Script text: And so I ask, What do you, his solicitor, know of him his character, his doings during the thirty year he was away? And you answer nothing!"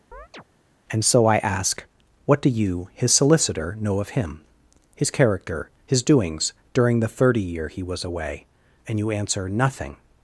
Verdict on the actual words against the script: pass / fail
pass